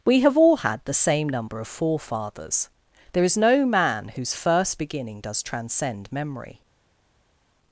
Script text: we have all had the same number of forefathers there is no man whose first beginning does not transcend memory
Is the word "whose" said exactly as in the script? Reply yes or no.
yes